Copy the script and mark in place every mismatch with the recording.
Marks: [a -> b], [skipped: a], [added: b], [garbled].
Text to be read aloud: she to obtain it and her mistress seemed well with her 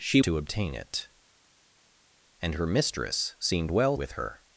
she to obtain it and her mistress seemed well with her